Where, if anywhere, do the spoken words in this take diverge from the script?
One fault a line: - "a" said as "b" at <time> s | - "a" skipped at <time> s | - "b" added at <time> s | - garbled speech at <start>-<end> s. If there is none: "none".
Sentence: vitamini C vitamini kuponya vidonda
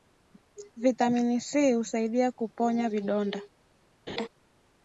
- "vitamini" said as "husaidia" at 1.7 s